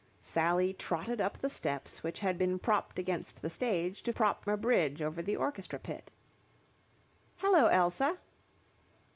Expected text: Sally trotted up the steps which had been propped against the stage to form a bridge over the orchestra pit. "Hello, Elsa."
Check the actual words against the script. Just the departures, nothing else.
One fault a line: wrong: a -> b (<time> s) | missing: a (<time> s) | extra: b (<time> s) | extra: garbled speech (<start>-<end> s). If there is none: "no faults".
wrong: form -> propped (4.1 s)